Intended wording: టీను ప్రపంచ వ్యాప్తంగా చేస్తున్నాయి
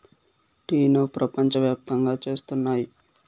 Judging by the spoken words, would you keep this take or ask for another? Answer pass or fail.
pass